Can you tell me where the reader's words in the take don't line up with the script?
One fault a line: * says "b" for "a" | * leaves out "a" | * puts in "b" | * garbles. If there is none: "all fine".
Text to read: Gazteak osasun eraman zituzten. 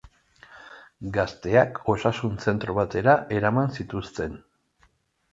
* puts in "zentro batera"